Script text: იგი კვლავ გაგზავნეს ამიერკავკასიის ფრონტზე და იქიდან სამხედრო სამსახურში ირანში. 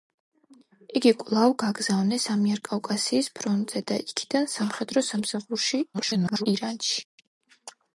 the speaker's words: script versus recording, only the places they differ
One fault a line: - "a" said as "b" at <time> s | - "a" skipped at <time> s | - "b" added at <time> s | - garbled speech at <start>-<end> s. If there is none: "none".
- garbled speech at 5.9-6.5 s